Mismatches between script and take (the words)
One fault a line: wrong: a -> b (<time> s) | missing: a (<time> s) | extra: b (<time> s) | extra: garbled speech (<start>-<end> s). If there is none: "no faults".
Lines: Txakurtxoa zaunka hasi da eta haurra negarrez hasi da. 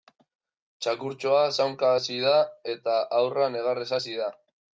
no faults